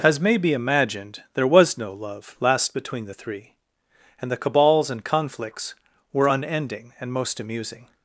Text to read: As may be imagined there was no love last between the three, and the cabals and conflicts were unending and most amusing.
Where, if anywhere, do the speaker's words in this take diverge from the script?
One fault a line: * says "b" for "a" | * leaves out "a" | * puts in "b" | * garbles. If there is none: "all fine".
all fine